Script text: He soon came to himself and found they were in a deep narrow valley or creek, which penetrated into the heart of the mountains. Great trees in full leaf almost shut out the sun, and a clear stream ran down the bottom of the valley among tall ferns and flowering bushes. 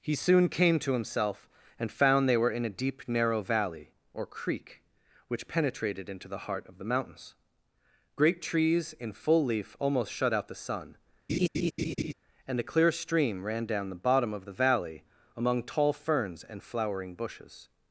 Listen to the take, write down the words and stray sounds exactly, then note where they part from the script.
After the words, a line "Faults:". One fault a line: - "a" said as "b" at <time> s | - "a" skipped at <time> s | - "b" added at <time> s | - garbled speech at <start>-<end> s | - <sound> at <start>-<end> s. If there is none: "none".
He soon came to himself and found they were in a deep narrow valley or creek, which penetrated into the heart of the mountains. Great trees in full leaf almost shut out the sun, and a clear stream ran down the bottom of the valley among tall ferns and flowering bushes.
Faults:
- laugh at 11.3-12.1 s